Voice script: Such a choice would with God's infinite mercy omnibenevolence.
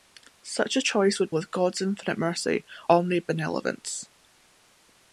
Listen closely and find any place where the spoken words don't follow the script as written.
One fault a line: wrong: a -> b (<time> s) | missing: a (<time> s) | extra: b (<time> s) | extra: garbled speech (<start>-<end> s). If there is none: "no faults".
no faults